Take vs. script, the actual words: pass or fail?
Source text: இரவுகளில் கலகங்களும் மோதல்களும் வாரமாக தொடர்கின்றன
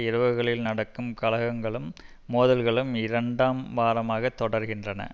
fail